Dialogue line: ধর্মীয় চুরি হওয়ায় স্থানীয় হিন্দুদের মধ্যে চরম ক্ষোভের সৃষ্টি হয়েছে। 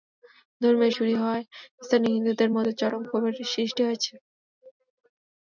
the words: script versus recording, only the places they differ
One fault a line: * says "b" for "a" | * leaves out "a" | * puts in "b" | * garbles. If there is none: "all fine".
all fine